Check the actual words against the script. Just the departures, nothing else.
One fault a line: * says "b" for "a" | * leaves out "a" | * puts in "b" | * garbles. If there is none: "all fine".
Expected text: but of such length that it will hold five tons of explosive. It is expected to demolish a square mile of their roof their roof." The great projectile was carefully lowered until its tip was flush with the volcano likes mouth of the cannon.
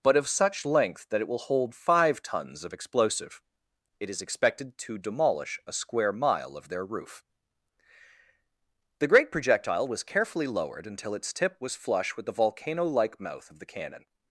* leaves out "their roof"
* says "like" for "likes"